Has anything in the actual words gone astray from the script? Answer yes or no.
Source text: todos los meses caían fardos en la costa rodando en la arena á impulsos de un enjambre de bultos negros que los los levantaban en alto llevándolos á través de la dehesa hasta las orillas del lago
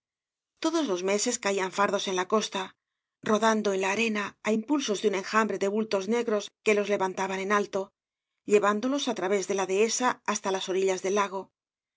yes